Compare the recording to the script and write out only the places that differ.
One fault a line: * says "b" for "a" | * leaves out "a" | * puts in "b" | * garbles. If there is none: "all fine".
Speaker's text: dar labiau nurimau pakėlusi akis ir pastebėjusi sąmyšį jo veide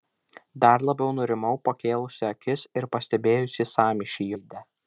* leaves out "jo"